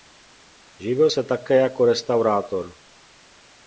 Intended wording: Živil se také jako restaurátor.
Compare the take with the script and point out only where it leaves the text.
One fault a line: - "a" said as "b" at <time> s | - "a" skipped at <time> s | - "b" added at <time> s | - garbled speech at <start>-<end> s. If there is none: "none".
none